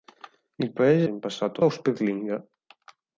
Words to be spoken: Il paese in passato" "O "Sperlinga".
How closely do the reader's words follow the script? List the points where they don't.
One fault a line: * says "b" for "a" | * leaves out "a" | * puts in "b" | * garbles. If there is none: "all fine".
all fine